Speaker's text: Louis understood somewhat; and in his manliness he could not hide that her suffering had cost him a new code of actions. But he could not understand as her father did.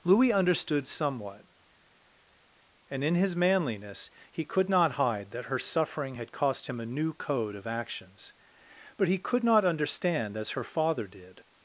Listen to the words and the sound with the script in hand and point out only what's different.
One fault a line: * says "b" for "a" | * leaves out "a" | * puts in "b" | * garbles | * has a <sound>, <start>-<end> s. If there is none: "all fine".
all fine